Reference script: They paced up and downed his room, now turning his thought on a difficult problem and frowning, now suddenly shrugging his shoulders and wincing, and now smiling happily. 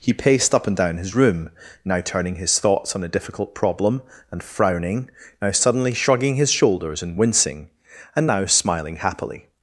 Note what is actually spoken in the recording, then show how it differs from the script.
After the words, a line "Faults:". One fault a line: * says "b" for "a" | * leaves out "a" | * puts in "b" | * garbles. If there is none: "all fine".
He paced up and down his room, now turning his thoughts on a difficult problem and frowning, now suddenly shrugging his shoulders and wincing, and now smiling happily.
Faults:
* says "He" for "They"
* says "down" for "downed"
* says "thoughts" for "thought"